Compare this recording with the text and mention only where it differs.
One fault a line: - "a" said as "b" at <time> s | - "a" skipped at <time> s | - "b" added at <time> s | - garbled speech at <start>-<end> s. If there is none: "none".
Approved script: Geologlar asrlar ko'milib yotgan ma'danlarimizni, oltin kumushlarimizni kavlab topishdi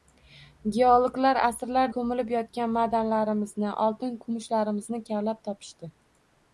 none